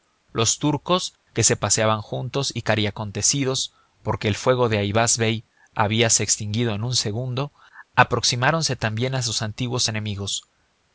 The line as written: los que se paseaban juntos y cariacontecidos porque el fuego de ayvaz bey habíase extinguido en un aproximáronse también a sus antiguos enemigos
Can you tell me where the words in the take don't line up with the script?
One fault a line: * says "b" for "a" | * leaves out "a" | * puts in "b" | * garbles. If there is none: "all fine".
* puts in "turcos"
* puts in "segundo"